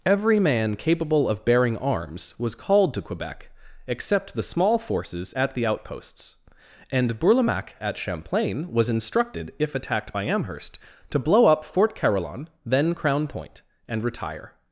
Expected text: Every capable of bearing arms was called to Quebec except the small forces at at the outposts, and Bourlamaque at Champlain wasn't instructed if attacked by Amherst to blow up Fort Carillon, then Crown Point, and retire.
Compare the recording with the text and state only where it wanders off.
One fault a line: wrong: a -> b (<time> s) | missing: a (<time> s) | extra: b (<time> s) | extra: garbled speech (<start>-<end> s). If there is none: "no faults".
extra: man (0.4 s)
missing: at (5.5 s)
wrong: wasn't -> was (8.7 s)